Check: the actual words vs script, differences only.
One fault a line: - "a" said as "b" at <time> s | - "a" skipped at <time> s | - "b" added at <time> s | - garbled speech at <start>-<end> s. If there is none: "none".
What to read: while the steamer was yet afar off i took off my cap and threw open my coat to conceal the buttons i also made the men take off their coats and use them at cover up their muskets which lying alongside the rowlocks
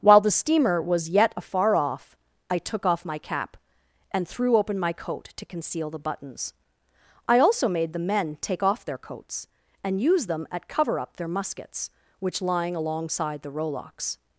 none